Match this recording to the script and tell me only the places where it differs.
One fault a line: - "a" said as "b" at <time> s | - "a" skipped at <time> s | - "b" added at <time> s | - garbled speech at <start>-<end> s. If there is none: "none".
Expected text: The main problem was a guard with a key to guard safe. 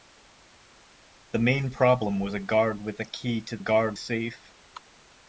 none